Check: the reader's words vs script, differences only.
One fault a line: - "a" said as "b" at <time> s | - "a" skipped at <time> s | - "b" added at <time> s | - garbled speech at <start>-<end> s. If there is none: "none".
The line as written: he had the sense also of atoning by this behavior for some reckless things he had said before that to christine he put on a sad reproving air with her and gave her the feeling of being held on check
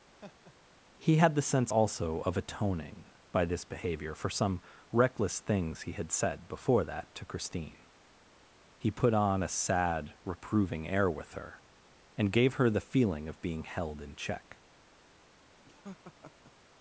- "on" said as "in" at 14.0 s